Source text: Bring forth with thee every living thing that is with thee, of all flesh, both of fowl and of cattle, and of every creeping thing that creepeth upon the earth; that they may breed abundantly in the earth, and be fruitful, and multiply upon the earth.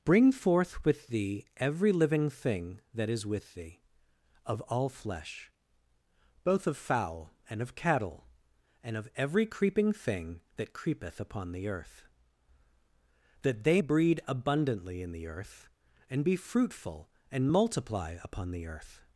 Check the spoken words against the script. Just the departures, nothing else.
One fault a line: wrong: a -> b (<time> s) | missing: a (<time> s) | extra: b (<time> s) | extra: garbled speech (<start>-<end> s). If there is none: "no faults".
missing: may (13.8 s)